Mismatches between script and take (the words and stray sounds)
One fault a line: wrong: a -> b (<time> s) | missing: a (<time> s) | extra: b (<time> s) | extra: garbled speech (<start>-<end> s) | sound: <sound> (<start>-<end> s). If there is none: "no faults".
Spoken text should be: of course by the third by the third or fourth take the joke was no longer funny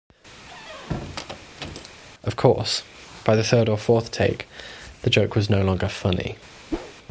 sound: squeak (0.4-1.9 s)
missing: by the third (3.7 s)
sound: whoosh (6.7-7.0 s)